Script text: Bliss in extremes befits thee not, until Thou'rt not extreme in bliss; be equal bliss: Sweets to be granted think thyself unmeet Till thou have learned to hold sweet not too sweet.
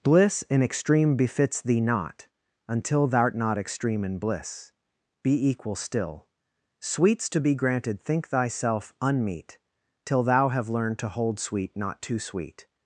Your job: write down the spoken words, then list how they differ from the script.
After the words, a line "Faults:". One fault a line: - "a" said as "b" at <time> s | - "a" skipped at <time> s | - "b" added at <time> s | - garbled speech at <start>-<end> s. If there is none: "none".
Bliss in extreme befits thee not, until Thou'rt not extreme in bliss; be equal still: Sweets to be granted think thyself unmeet Till thou have learned to hold sweet not too sweet.
Faults:
- "extremes" said as "extreme" at 0.6 s
- "bliss" said as "still" at 5.8 s